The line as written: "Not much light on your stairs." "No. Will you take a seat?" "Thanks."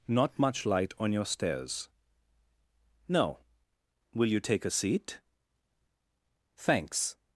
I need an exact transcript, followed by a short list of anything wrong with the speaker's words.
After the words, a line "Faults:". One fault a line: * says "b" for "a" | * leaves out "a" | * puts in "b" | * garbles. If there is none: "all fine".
"Not much light on your stairs." "No. Will you take a seat?" "Thanks."
Faults:
all fine